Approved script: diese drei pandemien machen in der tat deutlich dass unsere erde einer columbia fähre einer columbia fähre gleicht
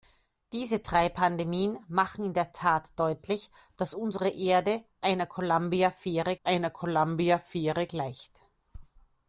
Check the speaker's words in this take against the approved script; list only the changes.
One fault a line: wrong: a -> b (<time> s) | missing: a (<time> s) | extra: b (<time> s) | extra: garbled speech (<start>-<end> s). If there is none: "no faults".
no faults